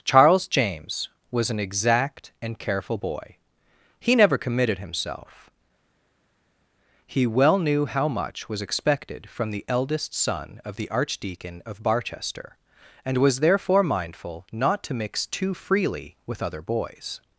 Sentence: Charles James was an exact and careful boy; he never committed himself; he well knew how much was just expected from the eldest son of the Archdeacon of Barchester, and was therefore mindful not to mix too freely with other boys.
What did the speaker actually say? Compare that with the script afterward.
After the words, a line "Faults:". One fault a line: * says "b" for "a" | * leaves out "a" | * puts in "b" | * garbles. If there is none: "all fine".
Charles James was an exact and careful boy; he never committed himself; he well knew how much was expected from the eldest son of the Archdeacon of Barchester, and was therefore mindful not to mix too freely with other boys.
Faults:
* leaves out "just"